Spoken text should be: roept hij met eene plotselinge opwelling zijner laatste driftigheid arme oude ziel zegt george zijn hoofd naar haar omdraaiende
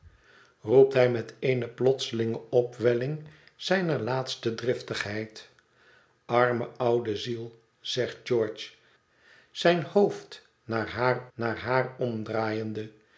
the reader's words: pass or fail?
fail